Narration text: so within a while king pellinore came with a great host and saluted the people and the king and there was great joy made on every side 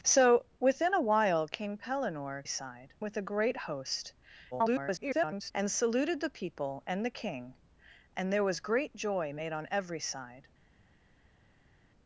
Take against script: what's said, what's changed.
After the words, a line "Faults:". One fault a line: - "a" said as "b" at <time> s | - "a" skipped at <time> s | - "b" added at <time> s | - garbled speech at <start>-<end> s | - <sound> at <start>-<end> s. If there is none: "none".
so within a while king pellinore side with a great host [garbled] and saluted the people and the king and there was great joy made on every side
Faults:
- "came" said as "side" at 2.5 s
- garbled speech at 4.5-5.5 s